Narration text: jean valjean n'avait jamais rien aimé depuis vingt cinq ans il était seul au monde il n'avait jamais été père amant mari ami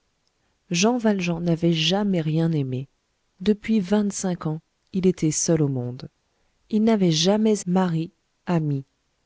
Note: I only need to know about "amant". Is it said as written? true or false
false